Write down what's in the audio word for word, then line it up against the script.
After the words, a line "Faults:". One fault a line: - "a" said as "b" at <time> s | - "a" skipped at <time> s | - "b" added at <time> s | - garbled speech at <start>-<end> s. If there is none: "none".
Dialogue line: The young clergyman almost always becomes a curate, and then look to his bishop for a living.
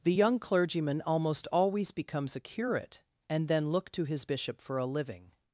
The young clergyman almost always becomes a curate, and then look to his bishop for a living.
Faults:
none